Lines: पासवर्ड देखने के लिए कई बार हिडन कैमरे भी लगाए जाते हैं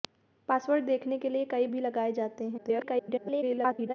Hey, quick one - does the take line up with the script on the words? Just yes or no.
no